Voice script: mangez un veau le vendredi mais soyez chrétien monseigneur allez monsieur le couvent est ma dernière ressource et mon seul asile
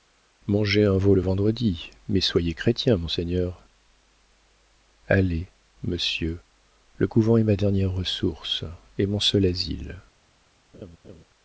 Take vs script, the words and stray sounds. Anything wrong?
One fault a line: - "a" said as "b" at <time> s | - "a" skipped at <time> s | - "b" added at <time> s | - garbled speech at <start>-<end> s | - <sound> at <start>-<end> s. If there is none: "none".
- laugh at 10.7-11.2 s